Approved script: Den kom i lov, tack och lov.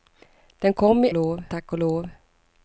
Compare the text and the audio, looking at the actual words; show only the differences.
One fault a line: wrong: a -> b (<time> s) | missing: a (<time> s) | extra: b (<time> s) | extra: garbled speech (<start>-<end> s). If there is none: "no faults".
no faults